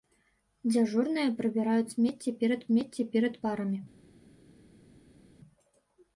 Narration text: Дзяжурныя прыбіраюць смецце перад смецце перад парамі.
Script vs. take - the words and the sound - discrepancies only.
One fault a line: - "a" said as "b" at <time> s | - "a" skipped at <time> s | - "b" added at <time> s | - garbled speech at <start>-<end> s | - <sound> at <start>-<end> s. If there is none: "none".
none